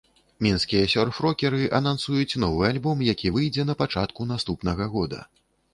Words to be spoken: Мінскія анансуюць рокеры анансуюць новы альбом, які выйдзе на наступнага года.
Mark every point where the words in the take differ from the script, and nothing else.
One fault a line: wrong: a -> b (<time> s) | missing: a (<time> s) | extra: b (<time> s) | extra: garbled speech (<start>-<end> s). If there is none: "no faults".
wrong: анансуюць -> сёрф (0.9 s)
extra: пачатку (3.9 s)